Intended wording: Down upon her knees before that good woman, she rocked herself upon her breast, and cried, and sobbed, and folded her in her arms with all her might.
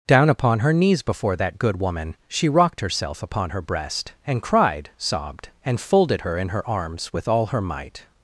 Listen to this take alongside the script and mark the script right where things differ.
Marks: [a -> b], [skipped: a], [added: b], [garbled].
Down upon her knees before that good woman, she rocked herself upon her breast, and cried, [skipped: and] sobbed, and folded her in her arms with all her might.